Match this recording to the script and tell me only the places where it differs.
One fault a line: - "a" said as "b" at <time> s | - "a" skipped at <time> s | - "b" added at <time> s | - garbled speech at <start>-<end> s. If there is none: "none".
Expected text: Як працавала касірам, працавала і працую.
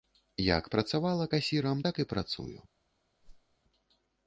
- "працавала" said as "так" at 1.9 s